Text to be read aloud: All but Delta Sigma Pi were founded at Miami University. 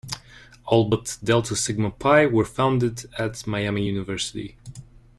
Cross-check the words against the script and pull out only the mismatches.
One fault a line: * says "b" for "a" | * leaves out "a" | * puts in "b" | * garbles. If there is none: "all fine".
all fine